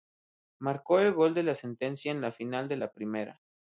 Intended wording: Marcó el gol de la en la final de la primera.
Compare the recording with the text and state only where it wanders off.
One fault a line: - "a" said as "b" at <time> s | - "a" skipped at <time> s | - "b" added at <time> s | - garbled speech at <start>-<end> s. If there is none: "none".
- "sentencia" added at 1.5 s